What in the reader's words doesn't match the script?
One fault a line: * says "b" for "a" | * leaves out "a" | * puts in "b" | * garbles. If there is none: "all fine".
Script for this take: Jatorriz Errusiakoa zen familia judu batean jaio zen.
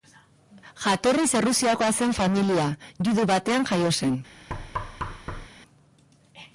all fine